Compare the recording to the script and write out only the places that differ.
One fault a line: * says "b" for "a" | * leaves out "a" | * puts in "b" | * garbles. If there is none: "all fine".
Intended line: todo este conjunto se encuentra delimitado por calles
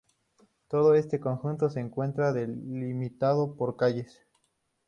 all fine